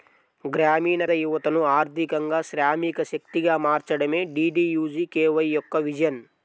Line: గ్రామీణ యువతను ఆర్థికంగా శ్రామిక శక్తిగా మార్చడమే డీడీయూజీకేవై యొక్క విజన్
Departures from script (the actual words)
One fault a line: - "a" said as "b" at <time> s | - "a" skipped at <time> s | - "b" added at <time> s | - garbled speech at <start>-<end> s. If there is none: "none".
none